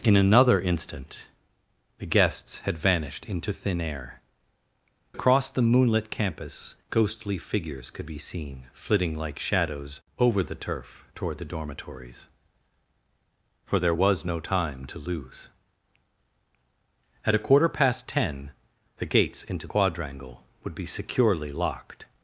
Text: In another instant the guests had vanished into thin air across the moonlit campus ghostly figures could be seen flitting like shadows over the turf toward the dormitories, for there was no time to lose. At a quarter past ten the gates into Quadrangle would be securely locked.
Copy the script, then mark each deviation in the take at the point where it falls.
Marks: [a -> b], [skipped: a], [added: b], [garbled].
In another instant the guests had vanished into thin air across the moonlit campus ghostly figures could be seen flitting like shadows over the turf toward the dormitories, for there was no time to lose. At a quarter past ten the gates into Quadrangle would be securely locked.